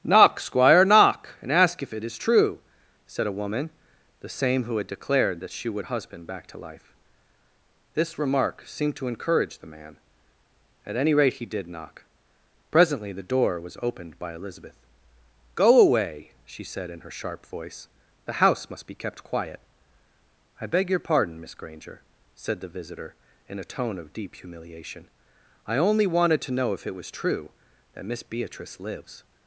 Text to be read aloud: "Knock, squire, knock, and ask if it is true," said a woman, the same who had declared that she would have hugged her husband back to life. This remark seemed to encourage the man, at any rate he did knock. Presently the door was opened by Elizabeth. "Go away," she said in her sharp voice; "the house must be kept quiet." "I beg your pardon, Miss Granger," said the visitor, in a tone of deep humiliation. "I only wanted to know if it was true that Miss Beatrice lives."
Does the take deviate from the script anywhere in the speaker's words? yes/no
yes